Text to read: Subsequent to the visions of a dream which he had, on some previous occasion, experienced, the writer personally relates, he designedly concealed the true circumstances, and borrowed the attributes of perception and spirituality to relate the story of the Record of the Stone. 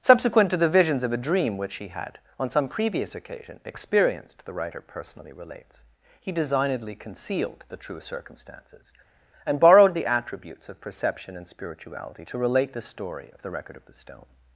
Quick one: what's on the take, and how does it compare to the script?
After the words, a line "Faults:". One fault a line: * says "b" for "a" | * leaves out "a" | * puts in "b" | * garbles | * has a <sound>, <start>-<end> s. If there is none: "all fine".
Subsequent to the visions of a dream which he had, on some previous occasion, experienced, the writer personally relates, he designedly concealed the true circumstances, and borrowed the attributes of perception and spirituality to relate the story of the Record of the Stone.
Faults:
all fine